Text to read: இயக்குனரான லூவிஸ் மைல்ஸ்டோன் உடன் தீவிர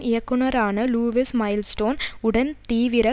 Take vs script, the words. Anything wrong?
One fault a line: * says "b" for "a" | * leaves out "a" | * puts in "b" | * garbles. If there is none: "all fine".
all fine